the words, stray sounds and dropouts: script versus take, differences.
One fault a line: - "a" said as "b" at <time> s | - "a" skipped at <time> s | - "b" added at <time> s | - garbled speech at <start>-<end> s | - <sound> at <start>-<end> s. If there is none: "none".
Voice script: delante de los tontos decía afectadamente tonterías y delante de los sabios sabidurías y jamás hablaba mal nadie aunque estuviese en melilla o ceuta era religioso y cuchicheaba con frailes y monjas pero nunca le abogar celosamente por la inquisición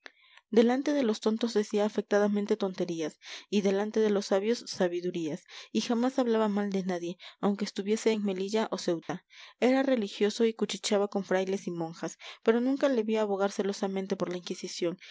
- "de" added at 6.7 s
- dropout at 9.0-9.1 s
- "vi" added at 13.0 s